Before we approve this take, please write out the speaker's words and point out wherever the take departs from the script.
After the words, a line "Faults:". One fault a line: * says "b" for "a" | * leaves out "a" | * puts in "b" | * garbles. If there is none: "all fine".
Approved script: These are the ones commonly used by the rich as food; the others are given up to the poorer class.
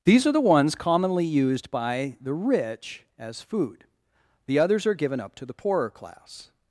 These are the ones commonly used by the rich as food; the others are given up to the poorer class.
Faults:
all fine